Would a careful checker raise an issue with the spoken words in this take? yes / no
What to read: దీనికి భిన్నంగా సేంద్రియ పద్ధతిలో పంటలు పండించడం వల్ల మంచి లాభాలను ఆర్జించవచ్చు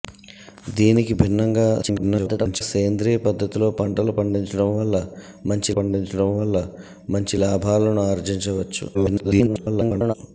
yes